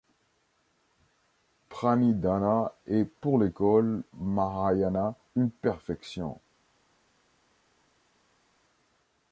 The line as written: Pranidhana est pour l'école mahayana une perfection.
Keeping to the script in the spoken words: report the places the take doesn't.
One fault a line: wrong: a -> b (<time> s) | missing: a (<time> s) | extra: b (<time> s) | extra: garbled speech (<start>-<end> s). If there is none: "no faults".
no faults